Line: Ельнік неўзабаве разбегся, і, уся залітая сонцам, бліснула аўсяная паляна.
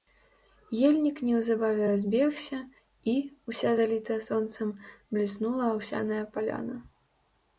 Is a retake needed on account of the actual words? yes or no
no